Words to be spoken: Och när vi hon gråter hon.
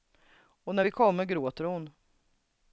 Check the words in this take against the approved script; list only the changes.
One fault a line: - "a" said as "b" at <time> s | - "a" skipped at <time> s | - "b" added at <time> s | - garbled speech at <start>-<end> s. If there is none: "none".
- "hon" said as "kommer" at 0.9 s